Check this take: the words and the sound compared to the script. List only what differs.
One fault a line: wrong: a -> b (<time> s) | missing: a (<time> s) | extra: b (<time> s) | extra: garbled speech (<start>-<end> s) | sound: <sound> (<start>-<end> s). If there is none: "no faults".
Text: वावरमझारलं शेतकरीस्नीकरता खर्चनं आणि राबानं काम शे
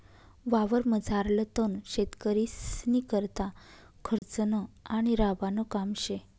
extra: तण (1.6 s)
sound: dropout (4.2-4.2 s)